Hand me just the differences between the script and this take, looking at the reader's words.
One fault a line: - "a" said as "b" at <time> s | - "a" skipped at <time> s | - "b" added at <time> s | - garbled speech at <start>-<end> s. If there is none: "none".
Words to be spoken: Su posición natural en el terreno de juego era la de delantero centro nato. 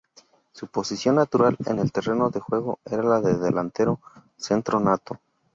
none